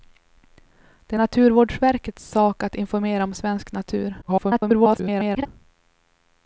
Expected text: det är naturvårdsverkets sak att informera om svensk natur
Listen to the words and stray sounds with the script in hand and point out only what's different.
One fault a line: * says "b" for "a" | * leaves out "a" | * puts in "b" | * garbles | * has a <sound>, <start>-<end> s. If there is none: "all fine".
* garbles